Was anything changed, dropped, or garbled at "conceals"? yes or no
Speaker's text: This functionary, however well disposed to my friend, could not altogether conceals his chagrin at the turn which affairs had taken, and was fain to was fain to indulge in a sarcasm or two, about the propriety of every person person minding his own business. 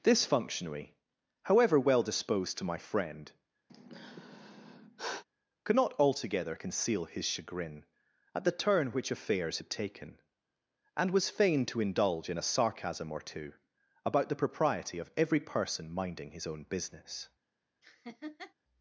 yes